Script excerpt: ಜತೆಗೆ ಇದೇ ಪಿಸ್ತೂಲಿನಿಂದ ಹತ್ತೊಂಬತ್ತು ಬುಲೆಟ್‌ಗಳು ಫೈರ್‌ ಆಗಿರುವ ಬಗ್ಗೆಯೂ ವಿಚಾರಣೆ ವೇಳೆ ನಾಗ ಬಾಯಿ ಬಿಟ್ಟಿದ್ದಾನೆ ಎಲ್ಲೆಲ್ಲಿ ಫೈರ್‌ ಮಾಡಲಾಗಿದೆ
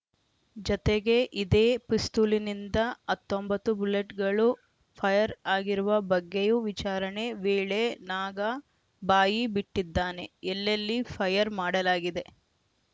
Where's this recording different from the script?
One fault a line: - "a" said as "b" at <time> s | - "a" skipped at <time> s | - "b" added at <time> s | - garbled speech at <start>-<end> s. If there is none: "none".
none